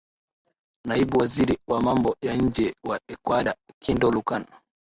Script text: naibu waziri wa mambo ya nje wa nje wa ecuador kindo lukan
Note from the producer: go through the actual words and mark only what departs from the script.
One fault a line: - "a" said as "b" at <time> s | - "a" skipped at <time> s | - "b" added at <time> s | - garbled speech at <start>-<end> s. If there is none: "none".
- "nje wa" skipped at 3.0 s